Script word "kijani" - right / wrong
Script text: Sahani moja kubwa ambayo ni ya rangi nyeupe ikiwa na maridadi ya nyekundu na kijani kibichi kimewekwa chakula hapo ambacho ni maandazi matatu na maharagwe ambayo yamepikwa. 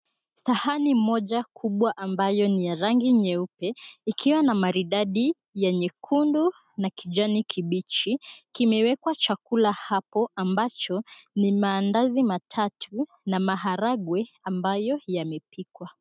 right